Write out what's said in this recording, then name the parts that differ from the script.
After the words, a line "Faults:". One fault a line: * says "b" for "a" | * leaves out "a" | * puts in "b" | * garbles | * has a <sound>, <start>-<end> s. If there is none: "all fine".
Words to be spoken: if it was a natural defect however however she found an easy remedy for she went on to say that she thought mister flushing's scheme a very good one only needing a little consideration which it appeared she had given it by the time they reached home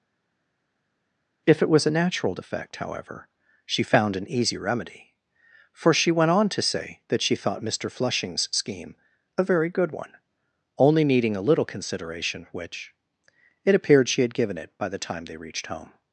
if it was a natural defect however she found an easy remedy for she went on to say that she thought mister flushing's scheme a very good one only needing a little consideration which it appeared she had given it by the time they reached home
Faults:
* leaves out "however"